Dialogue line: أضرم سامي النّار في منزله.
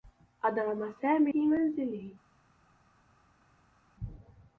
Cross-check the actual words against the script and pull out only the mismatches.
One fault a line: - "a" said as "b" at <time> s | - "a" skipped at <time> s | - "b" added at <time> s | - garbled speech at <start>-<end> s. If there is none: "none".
- "النّار" skipped at 1.3 s